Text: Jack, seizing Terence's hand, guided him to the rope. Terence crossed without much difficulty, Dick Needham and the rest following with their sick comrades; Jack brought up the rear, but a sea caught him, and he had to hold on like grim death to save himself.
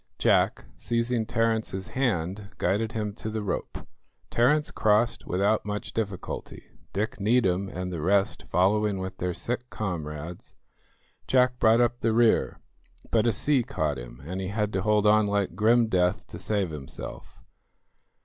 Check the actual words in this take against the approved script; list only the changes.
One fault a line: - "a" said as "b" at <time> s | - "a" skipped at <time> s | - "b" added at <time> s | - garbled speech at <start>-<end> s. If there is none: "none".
none